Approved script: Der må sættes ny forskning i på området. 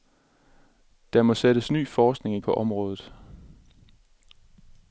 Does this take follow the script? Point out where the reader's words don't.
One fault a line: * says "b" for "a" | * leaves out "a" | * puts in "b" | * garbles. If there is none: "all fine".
all fine